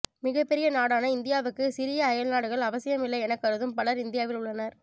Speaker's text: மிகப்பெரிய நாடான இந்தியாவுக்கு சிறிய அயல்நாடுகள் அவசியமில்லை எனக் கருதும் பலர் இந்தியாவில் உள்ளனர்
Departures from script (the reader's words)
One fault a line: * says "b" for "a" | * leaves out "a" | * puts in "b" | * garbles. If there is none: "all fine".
all fine